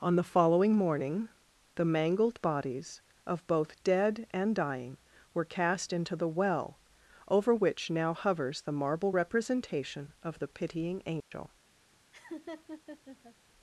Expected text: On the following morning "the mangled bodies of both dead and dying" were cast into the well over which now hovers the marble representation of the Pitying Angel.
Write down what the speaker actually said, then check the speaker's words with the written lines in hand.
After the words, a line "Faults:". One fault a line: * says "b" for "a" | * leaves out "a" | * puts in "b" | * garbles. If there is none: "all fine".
On the following morning "the mangled bodies of both dead and dying" were cast into the well over which now hovers the marble representation of the Pitying Angel.
Faults:
all fine